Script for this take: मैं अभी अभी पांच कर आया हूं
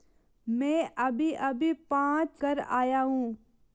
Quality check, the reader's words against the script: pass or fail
pass